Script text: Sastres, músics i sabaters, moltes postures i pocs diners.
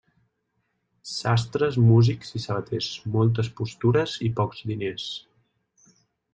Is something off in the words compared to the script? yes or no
no